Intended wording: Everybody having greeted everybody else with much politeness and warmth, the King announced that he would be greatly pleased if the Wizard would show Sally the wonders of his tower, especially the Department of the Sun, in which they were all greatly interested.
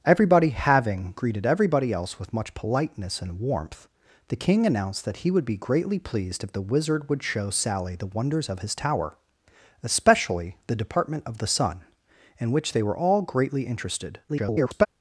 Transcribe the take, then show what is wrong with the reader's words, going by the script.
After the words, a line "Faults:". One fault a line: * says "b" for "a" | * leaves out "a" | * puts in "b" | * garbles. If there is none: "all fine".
Everybody having greeted everybody else with much politeness and warmth, the King announced that he would be greatly pleased if the Wizard would show Sally the wonders of his tower, especially the Department of the Sun, in which they were all greatly interested. [garbled]
Faults:
* garbles